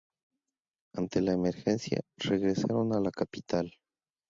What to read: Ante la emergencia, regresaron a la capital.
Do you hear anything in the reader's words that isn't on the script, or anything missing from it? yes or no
no